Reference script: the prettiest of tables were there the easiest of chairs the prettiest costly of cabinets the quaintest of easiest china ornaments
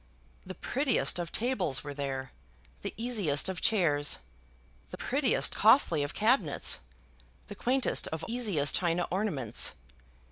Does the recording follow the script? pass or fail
pass